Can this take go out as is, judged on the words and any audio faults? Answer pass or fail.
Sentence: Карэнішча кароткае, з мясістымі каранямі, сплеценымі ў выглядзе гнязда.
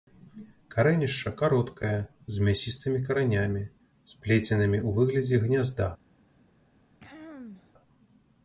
fail